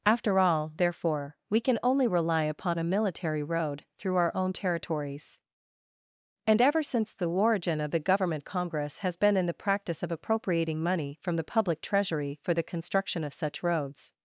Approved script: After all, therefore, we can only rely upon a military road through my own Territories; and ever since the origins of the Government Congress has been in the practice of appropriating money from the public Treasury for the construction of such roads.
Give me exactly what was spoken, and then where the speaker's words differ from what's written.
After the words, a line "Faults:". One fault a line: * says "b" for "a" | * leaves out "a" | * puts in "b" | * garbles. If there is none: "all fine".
After all, therefore, we can only rely upon a military road through our own Territories; and ever since the origin of the Government Congress has been in the practice of appropriating money from the public Treasury for the construction of such roads.
Faults:
* says "our" for "my"
* says "origin" for "origins"